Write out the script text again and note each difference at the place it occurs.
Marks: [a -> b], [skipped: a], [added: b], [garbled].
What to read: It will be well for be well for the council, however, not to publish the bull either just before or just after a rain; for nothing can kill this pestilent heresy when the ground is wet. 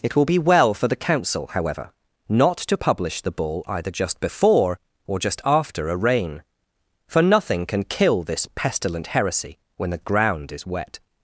It will be well for [skipped: be well for] the council, however, not to publish the bull either just before or just after a rain; for nothing can kill this pestilent heresy when the ground is wet.